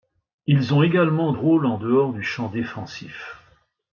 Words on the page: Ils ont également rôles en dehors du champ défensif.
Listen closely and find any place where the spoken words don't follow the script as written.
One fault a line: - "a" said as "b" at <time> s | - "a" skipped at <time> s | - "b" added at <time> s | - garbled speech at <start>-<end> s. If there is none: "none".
none